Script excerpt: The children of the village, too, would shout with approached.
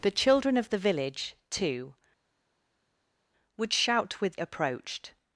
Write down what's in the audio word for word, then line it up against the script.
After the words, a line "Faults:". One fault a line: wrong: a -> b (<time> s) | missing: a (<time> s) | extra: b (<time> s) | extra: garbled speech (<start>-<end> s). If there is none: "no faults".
The children of the village, too, would shout with approached.
Faults:
no faults